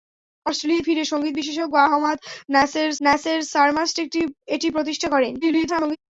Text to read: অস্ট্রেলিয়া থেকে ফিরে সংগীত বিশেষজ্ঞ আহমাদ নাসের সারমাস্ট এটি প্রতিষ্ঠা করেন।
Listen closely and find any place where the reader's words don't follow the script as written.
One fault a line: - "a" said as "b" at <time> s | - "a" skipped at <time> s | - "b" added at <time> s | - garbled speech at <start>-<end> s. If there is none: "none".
- "থেকে" skipped at 0.8 s
- "নাসের" added at 3.0 s
- garbled speech at 5.4-6.0 s